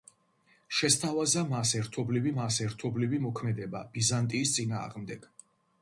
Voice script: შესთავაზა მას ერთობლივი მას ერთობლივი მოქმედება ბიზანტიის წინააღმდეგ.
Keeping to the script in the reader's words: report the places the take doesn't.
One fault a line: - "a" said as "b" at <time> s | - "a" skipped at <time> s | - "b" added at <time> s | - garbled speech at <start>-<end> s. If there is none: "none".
none